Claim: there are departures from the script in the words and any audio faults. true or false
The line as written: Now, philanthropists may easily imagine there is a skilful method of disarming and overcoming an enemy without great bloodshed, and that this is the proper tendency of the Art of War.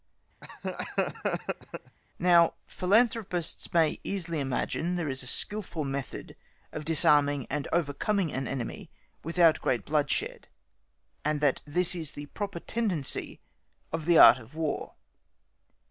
true